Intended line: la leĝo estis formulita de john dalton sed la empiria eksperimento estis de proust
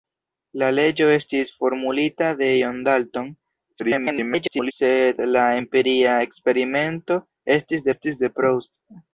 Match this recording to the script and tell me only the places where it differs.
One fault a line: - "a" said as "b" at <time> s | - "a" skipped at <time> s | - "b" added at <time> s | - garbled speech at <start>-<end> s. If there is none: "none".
- garbled speech at 3.8-4.7 s
- "estis" added at 7.9 s